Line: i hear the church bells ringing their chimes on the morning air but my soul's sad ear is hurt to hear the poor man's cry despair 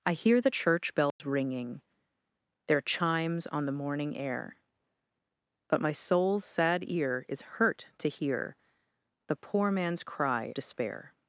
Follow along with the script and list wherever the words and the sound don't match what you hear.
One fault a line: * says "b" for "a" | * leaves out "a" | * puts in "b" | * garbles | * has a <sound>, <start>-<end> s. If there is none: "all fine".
* has a dropout, 1.1-1.2 s